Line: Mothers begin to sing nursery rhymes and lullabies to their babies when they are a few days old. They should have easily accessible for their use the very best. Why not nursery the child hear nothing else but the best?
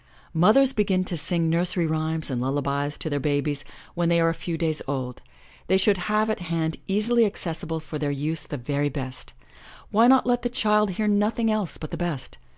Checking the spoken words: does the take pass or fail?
fail